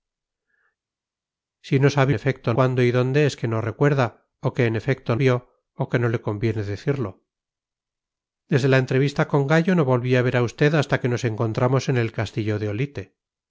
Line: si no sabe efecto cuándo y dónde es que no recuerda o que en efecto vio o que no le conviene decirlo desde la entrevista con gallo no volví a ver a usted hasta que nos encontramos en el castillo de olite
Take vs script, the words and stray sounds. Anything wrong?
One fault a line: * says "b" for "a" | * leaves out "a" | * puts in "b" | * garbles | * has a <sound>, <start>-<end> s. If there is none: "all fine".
all fine